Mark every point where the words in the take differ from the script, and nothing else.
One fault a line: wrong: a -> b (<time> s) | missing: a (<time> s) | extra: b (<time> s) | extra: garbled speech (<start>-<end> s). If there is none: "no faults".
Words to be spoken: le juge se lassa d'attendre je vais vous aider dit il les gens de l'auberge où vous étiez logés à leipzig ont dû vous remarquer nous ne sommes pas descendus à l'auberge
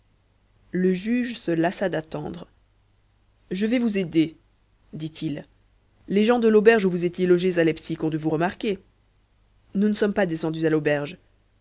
no faults